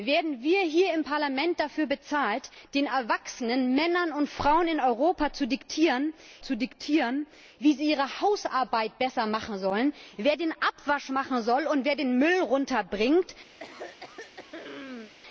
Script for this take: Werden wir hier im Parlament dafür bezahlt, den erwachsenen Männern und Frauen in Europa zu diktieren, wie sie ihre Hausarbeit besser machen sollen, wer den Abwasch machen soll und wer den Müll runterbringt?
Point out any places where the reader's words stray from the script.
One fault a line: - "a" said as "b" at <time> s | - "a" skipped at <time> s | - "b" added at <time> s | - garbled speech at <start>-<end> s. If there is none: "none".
- "zu diktieren" added at 6.4 s